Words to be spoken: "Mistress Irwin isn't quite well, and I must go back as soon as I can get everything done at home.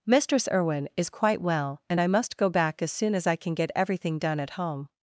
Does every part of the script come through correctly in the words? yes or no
no